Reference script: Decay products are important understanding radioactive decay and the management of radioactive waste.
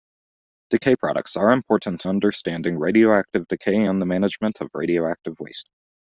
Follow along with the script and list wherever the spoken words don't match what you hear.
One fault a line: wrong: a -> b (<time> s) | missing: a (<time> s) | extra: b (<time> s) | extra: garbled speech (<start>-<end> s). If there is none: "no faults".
no faults